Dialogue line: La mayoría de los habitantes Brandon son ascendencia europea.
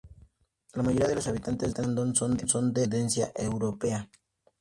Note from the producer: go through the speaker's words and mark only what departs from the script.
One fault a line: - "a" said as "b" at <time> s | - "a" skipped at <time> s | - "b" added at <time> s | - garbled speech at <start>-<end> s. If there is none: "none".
none